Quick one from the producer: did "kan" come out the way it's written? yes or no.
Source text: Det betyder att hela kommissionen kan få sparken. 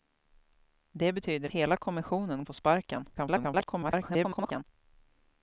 no